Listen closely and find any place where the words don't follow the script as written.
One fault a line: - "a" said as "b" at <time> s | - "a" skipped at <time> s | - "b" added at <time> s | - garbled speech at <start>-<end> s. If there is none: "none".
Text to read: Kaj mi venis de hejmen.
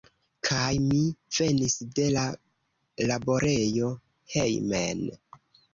- "la laborejo" added at 2.2 s